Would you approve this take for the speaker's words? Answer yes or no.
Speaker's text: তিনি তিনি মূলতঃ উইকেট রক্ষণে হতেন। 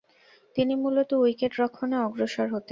no